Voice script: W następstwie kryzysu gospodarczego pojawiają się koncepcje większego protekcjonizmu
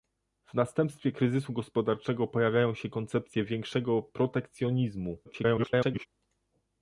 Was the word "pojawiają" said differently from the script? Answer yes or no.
no